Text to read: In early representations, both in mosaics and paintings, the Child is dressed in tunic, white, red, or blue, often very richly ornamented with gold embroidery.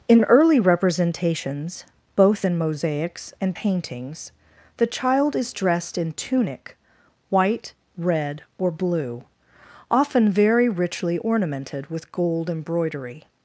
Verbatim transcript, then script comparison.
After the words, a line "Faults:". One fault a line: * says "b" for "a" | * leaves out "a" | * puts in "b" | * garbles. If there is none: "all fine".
In early representations, both in mosaics and paintings, the Child is dressed in tunic, white, red, or blue, often very richly ornamented with gold embroidery.
Faults:
all fine